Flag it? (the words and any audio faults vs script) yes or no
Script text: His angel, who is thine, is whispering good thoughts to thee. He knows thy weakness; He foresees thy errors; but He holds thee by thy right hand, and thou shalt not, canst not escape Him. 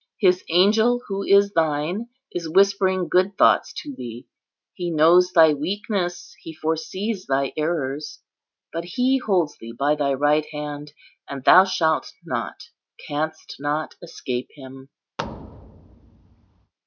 yes